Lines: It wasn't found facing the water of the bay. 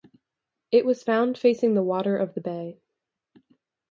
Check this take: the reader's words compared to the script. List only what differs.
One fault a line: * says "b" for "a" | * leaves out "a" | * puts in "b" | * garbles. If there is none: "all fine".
* says "was" for "wasn't"